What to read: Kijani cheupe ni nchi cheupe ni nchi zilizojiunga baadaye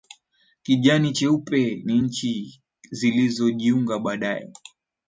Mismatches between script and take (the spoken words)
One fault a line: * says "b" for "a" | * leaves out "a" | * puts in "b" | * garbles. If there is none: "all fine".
* leaves out "cheupe ni nchi"